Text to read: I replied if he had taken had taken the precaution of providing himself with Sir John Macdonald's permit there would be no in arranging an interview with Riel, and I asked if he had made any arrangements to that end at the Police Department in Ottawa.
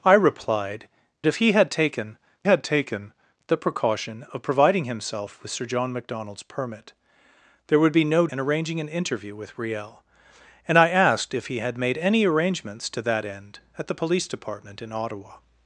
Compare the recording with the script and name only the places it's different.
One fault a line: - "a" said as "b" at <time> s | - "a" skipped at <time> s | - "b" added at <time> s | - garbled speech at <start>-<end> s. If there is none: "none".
none